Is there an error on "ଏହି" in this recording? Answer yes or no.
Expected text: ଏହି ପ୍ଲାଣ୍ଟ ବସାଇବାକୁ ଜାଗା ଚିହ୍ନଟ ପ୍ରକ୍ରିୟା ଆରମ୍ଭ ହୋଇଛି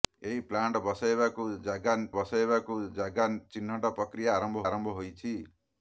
no